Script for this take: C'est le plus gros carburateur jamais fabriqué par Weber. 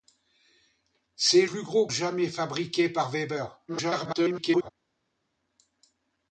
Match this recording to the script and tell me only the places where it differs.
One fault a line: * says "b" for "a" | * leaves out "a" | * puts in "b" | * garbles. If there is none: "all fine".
* leaves out "le"
* leaves out "carburateur"
* garbles